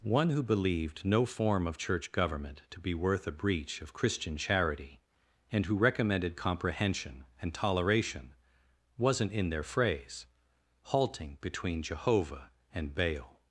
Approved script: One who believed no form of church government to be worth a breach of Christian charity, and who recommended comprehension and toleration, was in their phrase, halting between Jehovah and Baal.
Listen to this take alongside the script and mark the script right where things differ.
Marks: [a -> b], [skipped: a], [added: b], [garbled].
One who believed no form of church government to be worth a breach of Christian charity, and who recommended comprehension and toleration, [was -> wasn't] in their phrase, halting between Jehovah and Baal.